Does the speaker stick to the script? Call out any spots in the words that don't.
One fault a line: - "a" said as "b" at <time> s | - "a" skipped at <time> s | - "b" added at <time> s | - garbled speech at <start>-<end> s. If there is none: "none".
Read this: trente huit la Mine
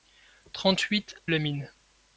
none